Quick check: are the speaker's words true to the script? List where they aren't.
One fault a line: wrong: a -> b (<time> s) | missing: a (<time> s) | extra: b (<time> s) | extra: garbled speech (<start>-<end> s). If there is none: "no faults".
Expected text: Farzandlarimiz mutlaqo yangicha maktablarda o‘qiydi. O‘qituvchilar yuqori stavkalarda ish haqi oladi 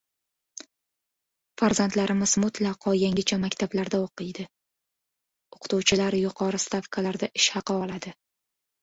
no faults